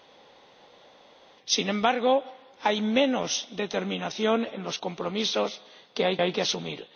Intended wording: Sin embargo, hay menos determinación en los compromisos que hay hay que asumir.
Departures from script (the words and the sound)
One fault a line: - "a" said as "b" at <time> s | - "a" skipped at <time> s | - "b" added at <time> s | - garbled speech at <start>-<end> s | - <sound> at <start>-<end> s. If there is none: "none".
none